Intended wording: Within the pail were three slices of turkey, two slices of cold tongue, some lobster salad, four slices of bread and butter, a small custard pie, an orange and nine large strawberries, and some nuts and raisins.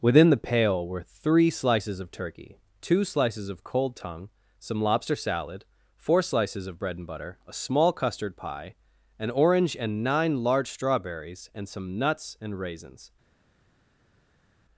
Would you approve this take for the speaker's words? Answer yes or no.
yes